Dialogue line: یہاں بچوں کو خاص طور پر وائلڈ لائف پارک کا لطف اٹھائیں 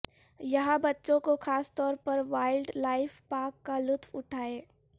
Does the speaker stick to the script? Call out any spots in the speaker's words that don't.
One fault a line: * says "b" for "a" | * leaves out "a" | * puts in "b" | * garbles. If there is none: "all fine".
all fine